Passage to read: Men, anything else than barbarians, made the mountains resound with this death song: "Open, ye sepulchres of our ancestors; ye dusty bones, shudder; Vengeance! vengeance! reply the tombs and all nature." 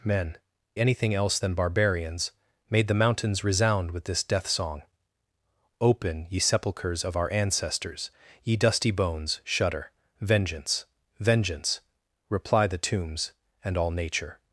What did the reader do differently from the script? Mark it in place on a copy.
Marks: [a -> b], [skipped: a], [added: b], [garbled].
Men, anything else than barbarians, made the mountains resound with this death song: "Open, ye sepulchres of our ancestors; ye dusty bones, shudder; Vengeance! vengeance! reply the tombs and all nature."